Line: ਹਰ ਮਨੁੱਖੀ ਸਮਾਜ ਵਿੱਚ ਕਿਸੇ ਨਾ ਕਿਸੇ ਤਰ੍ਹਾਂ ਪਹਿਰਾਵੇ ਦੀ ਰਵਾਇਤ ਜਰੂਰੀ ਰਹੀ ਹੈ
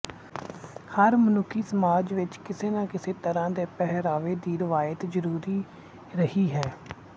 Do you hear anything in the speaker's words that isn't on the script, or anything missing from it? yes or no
yes